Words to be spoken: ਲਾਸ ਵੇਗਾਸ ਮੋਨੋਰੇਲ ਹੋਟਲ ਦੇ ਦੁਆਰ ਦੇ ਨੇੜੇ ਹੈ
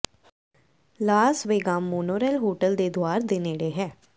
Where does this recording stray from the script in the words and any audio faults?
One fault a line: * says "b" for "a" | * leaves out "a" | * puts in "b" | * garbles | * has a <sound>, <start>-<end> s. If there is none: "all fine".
all fine